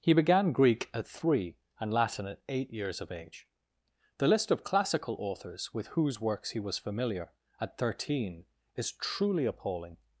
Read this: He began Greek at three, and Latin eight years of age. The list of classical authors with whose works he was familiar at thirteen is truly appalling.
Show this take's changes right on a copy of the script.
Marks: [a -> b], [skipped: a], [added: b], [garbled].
He began Greek at three, and Latin [added: at] eight years of age. The list of classical authors with whose works he was familiar at thirteen is truly appalling.